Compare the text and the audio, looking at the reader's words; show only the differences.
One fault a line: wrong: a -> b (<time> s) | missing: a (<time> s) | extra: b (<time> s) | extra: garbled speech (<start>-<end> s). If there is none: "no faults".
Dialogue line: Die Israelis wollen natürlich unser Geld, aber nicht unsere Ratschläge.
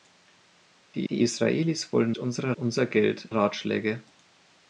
extra: die (1.1 s)
wrong: natürlich -> unsere (2.2 s)
missing: aber nicht unsere (3.3 s)